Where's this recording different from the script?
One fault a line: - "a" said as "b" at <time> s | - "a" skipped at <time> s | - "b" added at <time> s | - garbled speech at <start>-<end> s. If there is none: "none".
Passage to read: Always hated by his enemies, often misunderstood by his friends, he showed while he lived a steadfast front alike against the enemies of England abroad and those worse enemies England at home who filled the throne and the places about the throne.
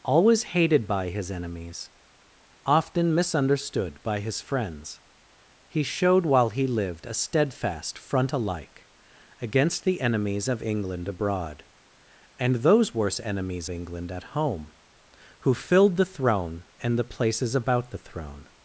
none